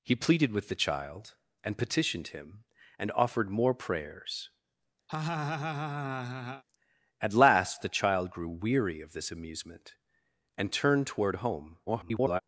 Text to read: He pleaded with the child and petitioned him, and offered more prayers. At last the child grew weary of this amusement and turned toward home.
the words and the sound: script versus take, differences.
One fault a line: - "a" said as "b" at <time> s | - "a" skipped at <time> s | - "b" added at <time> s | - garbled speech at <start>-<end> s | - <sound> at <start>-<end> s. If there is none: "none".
- laugh at 5.1-6.6 s
- garbled speech at 11.9-12.4 s